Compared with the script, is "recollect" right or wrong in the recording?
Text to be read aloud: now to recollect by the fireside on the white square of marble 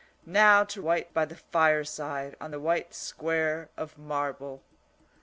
wrong